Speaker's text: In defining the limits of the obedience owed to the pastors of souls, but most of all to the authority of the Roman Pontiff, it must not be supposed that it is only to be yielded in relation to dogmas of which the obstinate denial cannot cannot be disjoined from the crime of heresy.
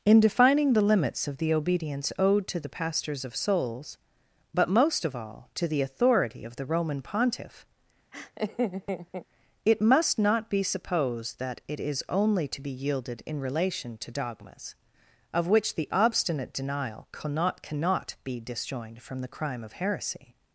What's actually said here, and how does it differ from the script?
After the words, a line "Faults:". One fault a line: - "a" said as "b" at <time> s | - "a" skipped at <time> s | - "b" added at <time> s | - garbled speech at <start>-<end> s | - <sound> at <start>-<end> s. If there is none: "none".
In defining the limits of the obedience owed to the pastors of souls, but most of all to the authority of the Roman Pontiff, it must not be supposed that it is only to be yielded in relation to dogmas of which the obstinate denial cannot cannot be disjoined from the crime of heresy.
Faults:
- laugh at 8.1-9.3 s